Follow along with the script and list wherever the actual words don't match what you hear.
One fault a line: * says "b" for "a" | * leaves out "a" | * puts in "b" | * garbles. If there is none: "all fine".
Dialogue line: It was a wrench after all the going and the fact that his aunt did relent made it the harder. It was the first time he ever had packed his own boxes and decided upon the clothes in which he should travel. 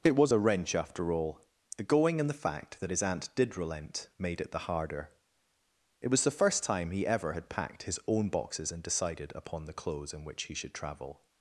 all fine